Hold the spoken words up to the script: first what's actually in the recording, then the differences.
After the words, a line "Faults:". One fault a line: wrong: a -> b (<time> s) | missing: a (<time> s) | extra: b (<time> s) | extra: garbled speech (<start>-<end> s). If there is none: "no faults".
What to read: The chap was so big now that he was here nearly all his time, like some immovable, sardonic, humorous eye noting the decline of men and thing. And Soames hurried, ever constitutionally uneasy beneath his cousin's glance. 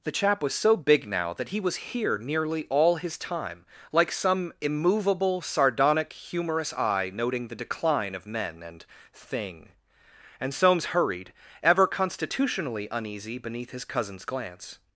The chap was so big now that he was here nearly all his time, like some immovable, sardonic, humorous eye noting the decline of men and thing. And Soames hurried, ever constitutionally uneasy beneath his cousin's glance.
Faults:
no faults